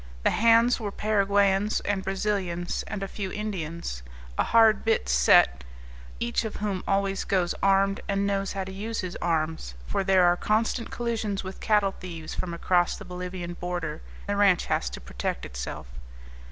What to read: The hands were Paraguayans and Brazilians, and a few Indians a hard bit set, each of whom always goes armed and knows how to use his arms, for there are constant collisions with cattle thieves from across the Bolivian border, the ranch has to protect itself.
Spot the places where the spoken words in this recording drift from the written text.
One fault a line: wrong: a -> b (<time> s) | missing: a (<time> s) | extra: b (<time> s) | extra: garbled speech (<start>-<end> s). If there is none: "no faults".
no faults